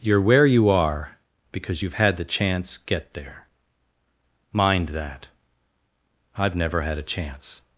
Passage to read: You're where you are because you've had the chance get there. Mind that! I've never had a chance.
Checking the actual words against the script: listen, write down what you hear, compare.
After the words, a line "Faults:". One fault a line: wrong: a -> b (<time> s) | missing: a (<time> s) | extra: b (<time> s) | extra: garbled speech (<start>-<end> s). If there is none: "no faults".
You're where you are because you've had the chance get there. Mind that! I've never had a chance.
Faults:
no faults